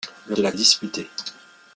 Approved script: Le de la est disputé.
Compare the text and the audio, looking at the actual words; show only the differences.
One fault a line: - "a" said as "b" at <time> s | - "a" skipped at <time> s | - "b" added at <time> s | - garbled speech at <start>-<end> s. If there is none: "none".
none